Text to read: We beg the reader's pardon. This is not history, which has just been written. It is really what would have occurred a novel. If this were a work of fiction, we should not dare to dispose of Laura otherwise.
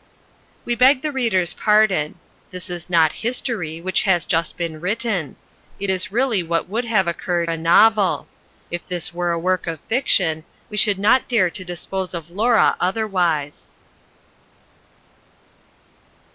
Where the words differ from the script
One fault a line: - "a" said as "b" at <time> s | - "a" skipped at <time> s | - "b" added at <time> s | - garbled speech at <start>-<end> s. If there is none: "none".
none